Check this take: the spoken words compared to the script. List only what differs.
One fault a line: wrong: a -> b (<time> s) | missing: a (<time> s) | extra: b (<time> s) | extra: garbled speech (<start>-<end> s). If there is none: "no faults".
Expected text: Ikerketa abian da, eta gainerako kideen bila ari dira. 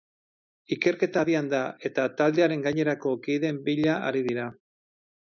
extra: taldearen (2.2 s)